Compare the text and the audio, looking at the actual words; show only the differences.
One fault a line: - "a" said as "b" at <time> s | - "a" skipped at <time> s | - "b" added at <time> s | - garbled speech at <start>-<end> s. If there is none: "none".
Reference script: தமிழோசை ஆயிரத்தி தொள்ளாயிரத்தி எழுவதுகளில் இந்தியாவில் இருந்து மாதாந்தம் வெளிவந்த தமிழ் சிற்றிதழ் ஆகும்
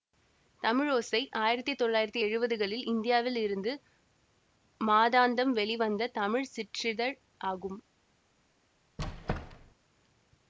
none